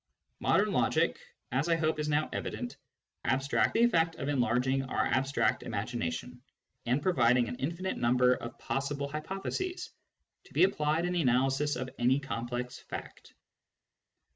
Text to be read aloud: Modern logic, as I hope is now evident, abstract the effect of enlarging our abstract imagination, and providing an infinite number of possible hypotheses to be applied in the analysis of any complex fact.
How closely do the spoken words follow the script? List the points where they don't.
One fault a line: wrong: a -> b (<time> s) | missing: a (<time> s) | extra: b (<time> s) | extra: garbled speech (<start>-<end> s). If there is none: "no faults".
no faults